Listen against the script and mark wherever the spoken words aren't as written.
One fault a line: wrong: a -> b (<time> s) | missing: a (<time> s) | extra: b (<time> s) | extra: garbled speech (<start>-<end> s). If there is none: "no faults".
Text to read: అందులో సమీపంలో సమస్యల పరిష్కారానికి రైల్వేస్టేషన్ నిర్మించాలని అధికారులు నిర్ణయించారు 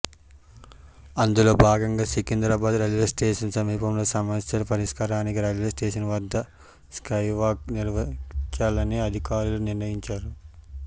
extra: భాగంగా సికింద్రాబాద్ రైల్వేస్టేషన్ (1.6 s)
extra: వద్ద స్కైవాక్ (6.1 s)